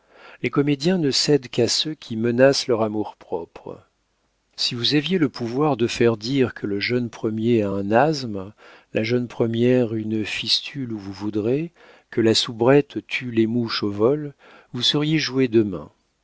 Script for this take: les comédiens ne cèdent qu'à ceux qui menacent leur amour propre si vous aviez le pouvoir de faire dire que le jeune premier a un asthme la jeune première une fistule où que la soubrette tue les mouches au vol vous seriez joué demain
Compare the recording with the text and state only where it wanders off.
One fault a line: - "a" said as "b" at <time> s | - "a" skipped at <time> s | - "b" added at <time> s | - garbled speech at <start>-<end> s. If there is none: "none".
- "vous voudrez" added at 11.0 s